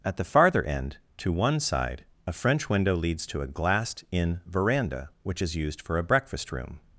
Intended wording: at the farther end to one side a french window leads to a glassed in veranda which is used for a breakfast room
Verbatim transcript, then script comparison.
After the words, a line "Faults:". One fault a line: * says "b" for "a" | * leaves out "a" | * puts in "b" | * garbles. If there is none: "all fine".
at the farther end to one side a french window leads to a glassed in veranda which is used for a breakfast room
Faults:
all fine